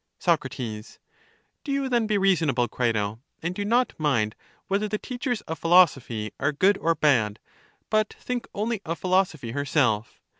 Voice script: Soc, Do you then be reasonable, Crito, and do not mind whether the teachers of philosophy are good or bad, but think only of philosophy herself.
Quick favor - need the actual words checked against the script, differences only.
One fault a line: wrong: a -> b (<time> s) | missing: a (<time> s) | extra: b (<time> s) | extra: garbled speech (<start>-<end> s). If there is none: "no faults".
no faults